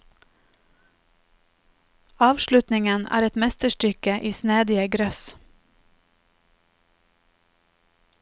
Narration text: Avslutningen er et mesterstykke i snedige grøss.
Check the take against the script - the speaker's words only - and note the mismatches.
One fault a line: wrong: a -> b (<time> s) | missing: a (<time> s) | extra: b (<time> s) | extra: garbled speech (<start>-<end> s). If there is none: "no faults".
no faults